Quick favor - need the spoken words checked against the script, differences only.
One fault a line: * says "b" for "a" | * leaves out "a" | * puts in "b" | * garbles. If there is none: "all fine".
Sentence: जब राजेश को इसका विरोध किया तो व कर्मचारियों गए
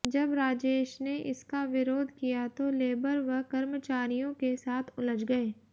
* says "ने" for "को"
* puts in "लेबर"
* puts in "के साथ उलझ"